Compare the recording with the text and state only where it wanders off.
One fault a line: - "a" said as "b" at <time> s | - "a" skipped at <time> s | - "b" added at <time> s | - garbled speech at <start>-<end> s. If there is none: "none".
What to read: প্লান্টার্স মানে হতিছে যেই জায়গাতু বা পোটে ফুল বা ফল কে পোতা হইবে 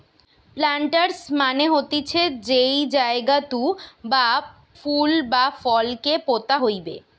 - "পোটে" skipped at 4.3 s